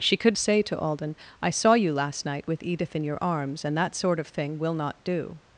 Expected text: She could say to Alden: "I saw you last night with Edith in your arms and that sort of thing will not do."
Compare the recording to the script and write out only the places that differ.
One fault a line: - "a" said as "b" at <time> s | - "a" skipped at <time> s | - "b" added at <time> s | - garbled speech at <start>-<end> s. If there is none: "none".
none